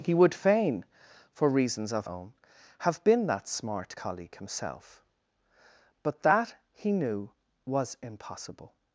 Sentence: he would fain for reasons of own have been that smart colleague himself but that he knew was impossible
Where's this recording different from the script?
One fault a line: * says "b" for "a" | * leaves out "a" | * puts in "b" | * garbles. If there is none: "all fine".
all fine